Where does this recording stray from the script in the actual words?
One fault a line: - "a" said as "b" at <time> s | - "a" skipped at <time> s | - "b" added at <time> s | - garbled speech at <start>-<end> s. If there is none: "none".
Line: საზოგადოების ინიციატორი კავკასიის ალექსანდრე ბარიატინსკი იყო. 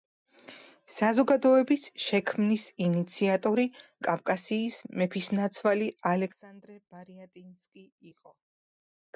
- "შექმნის" added at 2.0 s
- "მეფისნაცვალი" added at 5.0 s